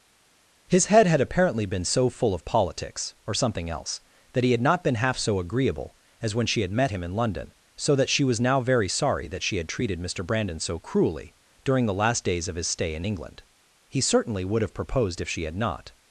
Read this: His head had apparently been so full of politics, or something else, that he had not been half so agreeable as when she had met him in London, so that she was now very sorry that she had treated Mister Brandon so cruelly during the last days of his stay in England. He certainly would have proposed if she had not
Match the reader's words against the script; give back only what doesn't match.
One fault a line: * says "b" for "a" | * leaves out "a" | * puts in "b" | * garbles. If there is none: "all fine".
all fine